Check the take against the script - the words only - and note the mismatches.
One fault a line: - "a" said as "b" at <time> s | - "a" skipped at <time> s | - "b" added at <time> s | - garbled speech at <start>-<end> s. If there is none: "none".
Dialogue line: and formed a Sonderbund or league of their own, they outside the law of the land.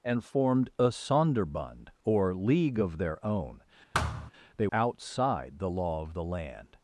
none